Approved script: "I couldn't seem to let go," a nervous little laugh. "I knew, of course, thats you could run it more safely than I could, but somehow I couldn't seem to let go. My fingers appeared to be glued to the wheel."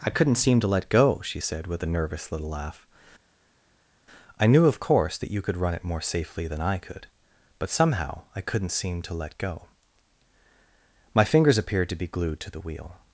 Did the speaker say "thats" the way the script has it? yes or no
no